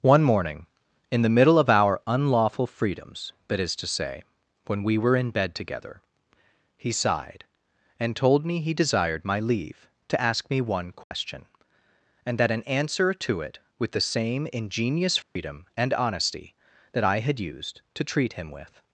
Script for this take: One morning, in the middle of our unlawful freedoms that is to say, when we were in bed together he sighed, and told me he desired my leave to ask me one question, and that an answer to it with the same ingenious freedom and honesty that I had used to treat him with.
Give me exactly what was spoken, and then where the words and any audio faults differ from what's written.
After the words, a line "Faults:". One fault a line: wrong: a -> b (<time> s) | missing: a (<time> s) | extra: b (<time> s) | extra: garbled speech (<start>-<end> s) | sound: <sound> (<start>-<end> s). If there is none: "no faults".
One morning, in the middle of our unlawful freedoms that is to say, when we were in bed together he sighed, and told me he desired my leave to ask me one question, and that an answer to it with the same ingenious freedom and honesty that I had used to treat him with.
Faults:
sound: dropout (11.0-11.1 s)
sound: dropout (15.2-15.4 s)